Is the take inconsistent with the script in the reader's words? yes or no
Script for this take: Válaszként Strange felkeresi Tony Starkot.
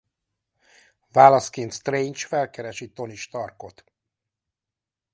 no